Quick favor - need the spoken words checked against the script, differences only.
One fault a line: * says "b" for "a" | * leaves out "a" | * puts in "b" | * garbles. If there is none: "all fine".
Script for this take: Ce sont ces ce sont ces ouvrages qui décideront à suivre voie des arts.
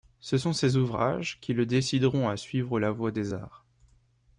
* leaves out "ce sont ces"
* puts in "le"
* puts in "la"